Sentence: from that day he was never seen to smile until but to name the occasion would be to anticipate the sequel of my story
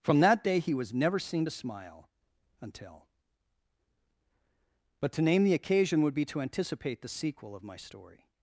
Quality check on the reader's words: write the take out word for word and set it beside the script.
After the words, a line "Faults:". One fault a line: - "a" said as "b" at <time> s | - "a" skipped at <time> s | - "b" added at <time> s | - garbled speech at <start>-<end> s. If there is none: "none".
from that day he was never seen to smile until but to name the occasion would be to anticipate the sequel of my story
Faults:
none